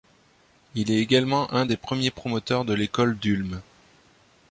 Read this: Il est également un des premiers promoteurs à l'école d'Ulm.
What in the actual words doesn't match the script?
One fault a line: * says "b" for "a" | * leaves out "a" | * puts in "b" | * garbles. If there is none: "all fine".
* says "de" for "à"